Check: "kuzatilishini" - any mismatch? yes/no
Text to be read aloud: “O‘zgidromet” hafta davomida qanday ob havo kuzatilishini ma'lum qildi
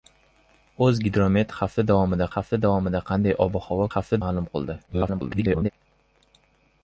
yes